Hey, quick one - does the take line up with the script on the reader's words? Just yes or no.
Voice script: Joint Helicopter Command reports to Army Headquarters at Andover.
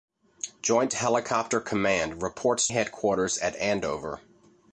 no